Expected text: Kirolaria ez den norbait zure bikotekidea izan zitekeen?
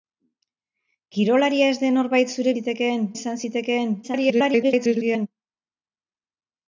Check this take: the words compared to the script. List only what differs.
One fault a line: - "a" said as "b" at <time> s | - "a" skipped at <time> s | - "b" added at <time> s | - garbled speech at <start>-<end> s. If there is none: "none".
- "bikotekidea" said as "zitekeen" at 2.6 s
- garbled speech at 4.0-5.3 s